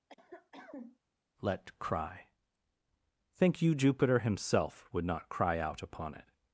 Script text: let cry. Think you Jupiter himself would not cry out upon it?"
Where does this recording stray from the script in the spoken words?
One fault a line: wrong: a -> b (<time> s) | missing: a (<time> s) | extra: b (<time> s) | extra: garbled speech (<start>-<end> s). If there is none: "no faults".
no faults